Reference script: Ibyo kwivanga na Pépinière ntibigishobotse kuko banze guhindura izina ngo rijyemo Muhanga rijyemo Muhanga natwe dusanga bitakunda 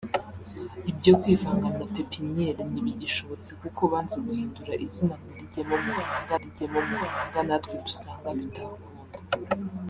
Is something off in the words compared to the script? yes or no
no